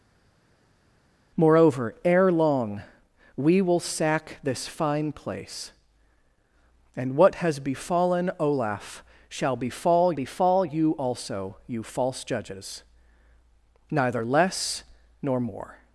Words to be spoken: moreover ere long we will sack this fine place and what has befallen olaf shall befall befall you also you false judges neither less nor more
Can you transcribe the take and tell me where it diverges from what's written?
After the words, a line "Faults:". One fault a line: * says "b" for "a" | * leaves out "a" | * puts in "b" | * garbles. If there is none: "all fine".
moreover ere long we will sack this fine place and what has befallen olaf shall befall befall you also you false judges neither less nor more
Faults:
all fine